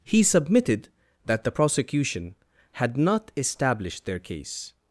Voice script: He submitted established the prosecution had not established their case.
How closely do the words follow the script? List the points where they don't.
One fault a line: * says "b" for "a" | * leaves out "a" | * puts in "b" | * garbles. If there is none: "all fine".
* says "that" for "established"